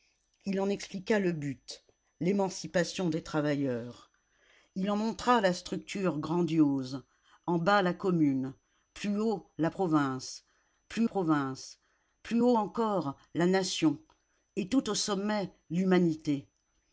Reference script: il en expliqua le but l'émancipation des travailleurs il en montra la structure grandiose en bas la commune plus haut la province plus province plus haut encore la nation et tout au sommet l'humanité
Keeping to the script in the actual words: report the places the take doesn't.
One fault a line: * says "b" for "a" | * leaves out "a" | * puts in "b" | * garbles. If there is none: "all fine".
all fine